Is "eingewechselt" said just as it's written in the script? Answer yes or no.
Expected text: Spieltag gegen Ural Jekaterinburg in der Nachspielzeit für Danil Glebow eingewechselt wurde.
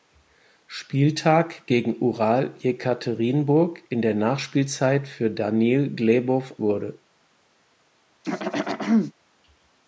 no